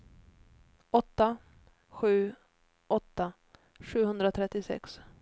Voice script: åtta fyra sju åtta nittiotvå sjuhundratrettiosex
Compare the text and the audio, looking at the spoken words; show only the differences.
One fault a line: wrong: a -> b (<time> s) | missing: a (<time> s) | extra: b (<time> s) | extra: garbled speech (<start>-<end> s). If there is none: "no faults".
missing: fyra (1.4 s)
missing: nittiotvå (3.3 s)